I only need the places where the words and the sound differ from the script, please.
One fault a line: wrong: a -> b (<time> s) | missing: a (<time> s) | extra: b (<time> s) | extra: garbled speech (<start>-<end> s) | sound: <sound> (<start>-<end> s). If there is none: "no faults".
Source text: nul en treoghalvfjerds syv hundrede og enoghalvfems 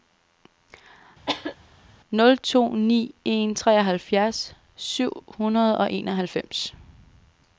sound: cough (1.3-1.6 s)
extra: to ni (2.4 s)